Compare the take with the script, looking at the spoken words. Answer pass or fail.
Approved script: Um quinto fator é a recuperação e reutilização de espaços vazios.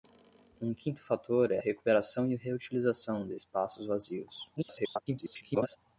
fail